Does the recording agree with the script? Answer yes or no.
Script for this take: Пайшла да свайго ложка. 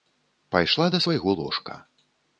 yes